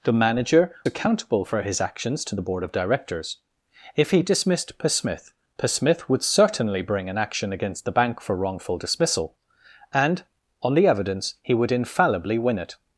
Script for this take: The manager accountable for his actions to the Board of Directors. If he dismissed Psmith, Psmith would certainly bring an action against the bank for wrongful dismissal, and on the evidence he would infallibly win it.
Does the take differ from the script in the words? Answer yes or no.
no